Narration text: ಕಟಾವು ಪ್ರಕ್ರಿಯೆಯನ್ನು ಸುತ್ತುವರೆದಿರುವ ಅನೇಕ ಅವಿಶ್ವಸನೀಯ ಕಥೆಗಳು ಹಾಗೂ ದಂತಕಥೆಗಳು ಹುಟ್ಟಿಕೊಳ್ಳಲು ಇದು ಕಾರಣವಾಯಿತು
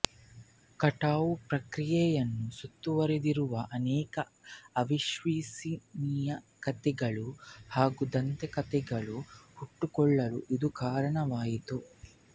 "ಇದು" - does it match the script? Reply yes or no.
yes